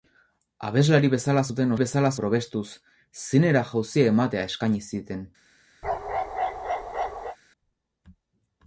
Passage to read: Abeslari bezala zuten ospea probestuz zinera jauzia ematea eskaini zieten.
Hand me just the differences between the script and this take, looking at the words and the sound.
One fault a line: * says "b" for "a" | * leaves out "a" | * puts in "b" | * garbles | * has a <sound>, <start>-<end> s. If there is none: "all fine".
* says "bezala" for "ospea"
* has a bark, 5.8-7.4 s